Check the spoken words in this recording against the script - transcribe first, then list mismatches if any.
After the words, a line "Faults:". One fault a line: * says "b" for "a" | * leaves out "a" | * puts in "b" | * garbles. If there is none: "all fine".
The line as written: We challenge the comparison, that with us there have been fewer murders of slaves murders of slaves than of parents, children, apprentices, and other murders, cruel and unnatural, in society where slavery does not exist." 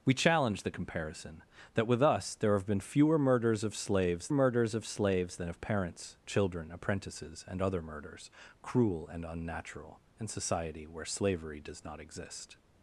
We challenge the comparison, that with us there have been fewer murders of slaves murders of slaves than of parents, children, apprentices, and other murders, cruel and unnatural, in society where slavery does not exist."
Faults:
all fine